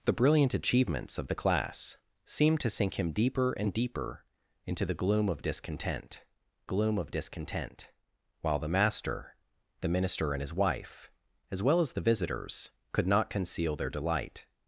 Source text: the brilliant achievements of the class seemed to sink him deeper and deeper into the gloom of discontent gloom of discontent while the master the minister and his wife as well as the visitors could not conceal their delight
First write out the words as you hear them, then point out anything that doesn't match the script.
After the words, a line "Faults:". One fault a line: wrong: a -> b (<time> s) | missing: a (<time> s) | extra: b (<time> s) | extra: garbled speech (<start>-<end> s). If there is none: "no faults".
the brilliant achievements of the class seemed to sink him deeper and deeper into the gloom of discontent gloom of discontent while the master the minister and his wife as well as the visitors could not conceal their delight
Faults:
no faults